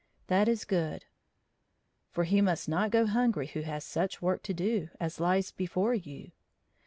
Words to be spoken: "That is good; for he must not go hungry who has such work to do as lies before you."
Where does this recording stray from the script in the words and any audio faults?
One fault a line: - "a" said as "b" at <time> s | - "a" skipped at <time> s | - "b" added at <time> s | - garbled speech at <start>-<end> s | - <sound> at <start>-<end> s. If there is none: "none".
none